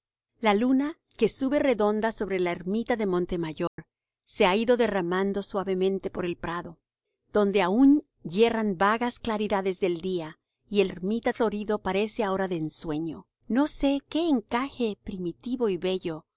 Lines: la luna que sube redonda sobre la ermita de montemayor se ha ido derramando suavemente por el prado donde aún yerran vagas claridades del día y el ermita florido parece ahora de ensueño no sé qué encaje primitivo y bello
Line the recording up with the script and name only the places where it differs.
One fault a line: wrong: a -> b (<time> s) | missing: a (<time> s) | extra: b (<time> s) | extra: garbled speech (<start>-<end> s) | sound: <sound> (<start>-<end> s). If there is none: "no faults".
sound: dropout (3.7-3.8 s)